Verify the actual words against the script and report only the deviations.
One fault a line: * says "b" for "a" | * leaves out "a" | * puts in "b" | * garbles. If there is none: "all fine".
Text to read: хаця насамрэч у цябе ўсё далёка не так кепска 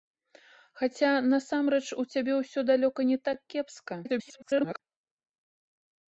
* garbles